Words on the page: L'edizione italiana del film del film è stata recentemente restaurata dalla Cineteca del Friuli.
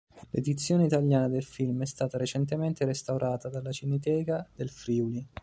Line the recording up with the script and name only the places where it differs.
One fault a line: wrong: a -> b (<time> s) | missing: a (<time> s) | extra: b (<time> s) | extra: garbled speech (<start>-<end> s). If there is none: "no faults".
missing: del film (1.8 s)